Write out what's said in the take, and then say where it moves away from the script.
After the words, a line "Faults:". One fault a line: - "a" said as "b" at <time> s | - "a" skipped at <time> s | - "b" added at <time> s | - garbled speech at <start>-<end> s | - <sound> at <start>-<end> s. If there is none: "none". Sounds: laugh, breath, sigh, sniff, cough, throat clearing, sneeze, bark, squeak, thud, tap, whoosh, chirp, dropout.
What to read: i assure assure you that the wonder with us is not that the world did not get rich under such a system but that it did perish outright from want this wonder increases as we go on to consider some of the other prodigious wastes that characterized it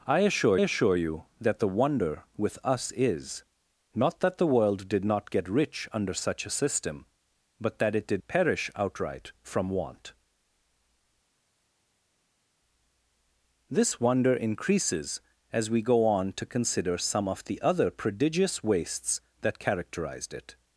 i assure assure you that the wonder with us is not that the world did not get rich under such a system but that it did perish outright from want this wonder increases as we go on to consider some of the other prodigious wastes that characterized it
Faults:
none